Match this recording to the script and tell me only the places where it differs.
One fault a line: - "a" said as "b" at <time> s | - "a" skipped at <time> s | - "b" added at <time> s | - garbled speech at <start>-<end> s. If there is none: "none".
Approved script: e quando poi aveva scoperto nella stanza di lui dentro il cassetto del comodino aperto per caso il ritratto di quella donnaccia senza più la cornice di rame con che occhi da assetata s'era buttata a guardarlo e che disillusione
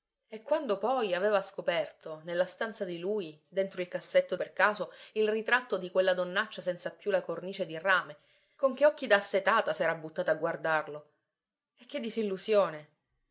- "del comodino aperto" skipped at 4.3 s